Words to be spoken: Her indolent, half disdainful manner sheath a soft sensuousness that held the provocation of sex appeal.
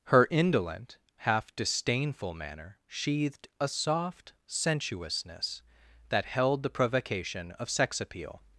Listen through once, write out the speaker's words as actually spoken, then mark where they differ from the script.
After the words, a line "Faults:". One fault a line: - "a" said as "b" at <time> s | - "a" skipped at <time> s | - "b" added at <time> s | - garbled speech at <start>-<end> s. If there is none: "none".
Her indolent, half disdainful manner sheathed a soft sensuousness that held the provocation of sex appeal.
Faults:
- "sheath" said as "sheathed" at 2.9 s